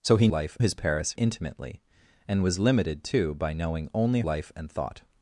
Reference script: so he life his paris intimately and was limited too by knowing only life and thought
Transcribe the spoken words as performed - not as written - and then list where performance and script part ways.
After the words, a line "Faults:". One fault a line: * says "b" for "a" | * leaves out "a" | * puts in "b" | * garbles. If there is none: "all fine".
so he life his paris intimately and was limited too by knowing only life and thought
Faults:
all fine